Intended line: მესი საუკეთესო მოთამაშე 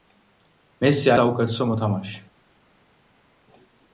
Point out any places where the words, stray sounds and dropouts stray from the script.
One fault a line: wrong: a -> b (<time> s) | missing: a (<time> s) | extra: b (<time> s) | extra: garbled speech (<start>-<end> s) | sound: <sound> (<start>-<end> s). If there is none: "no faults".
no faults